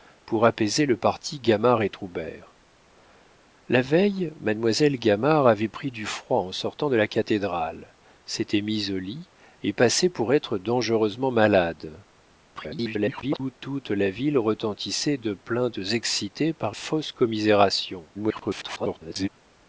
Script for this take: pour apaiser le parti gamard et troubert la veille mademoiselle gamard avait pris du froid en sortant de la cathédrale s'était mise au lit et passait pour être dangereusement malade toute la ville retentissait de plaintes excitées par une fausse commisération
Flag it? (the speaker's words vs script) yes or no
yes